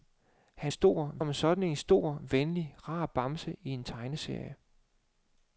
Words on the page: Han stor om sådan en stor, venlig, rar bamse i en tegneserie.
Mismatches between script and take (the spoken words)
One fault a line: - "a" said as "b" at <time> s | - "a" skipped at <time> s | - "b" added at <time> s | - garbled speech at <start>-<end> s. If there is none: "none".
none